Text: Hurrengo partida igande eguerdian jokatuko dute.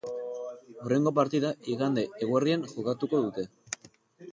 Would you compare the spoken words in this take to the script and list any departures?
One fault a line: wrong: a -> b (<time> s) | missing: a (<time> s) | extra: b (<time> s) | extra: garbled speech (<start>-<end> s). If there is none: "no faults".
no faults